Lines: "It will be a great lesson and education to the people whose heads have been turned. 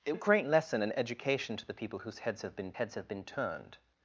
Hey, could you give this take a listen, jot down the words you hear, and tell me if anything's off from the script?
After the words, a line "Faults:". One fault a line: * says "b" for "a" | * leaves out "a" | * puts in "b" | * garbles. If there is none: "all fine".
"It a great lesson and education to the people whose heads have been heads have been turned.
Faults:
* leaves out "will be"
* puts in "heads have been"